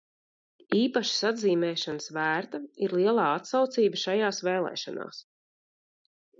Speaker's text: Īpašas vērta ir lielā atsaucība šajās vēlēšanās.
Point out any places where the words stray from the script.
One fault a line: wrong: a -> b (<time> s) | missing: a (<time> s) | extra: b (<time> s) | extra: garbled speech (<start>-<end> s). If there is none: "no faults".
extra: atzīmēšanas (1.3 s)